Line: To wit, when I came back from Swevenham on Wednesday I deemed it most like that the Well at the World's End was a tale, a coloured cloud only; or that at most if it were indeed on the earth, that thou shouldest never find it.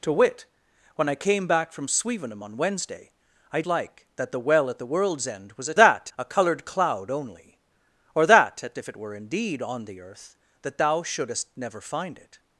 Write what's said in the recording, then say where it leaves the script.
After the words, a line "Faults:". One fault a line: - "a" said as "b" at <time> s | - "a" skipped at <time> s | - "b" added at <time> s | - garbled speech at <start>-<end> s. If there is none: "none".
To wit, when I came back from Swevenham on Wednesday I like that the Well at the World's End was a that, a coloured cloud only; or that at if it were indeed on the earth, that thou shouldest never find it.
Faults:
- "deemed it most" skipped at 3.6 s
- "tale" said as "that" at 5.8 s
- "most" skipped at 8.8 s